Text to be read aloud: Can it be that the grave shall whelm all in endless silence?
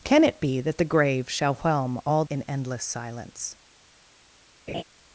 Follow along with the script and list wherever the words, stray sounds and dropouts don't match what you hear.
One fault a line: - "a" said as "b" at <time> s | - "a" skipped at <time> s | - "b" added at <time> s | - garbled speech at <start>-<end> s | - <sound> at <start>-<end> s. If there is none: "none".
- laugh at 4.7-4.8 s